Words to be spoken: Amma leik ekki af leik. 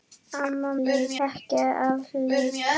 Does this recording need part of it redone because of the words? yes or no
no